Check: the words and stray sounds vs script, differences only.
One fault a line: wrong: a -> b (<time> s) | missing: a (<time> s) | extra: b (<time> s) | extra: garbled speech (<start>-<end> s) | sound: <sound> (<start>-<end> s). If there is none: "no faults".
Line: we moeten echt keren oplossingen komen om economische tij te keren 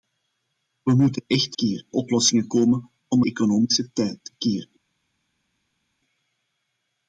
no faults